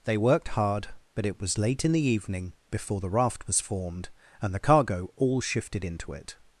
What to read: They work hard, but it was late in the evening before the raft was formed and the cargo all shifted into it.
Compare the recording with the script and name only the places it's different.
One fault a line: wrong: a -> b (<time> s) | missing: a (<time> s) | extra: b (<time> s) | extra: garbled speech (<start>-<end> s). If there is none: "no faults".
wrong: work -> worked (0.2 s)